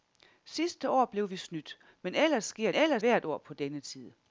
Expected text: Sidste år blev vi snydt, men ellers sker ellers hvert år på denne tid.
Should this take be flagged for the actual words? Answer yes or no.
no